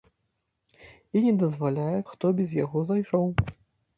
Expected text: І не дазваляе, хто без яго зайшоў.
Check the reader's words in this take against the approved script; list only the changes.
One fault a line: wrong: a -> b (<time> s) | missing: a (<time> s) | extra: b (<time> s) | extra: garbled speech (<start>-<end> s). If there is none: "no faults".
no faults